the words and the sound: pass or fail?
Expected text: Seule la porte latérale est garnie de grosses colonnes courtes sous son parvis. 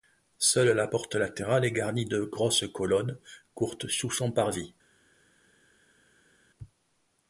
pass